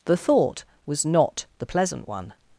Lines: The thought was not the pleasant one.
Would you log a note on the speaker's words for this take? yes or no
no